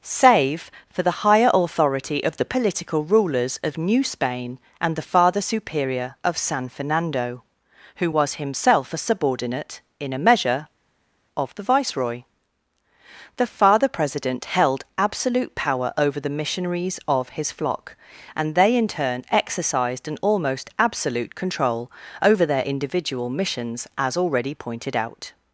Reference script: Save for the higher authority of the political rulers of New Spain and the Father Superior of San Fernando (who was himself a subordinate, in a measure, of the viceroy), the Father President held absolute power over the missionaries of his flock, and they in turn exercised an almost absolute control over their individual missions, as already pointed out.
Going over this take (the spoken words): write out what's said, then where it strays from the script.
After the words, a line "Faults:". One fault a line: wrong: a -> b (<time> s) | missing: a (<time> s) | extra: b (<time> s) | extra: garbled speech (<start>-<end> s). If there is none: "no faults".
Save for the higher authority of the political rulers of New Spain and the Father Superior of San Fernando (who was himself a subordinate, in a measure, of the viceroy), the Father President held absolute power over the missionaries of his flock, and they in turn exercised an almost absolute control over their individual missions, as already pointed out.
Faults:
no faults